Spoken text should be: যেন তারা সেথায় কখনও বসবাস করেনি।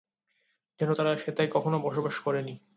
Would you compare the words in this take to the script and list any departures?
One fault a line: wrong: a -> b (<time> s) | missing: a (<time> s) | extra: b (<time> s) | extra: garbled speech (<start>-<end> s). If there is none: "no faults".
no faults